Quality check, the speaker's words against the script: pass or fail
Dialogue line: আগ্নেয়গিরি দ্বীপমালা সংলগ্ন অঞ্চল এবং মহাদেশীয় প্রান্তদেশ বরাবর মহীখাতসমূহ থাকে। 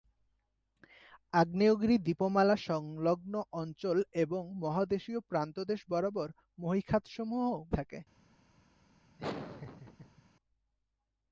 pass